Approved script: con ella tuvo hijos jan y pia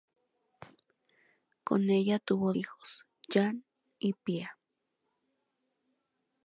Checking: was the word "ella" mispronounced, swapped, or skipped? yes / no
no